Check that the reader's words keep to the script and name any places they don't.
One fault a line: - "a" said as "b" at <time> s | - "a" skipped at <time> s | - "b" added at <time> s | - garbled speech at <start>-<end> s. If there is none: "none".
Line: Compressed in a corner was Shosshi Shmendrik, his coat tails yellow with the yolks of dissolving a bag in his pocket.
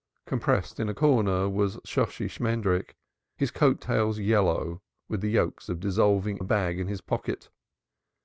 none